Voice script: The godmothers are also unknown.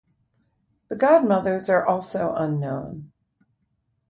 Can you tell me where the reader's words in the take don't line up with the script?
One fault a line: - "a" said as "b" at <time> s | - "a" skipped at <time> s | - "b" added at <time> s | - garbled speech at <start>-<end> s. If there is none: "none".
none